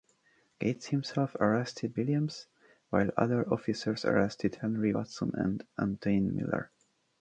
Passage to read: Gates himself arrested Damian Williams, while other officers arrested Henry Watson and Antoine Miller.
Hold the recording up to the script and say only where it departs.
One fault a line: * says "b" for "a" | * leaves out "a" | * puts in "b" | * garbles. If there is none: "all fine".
* leaves out "Damian"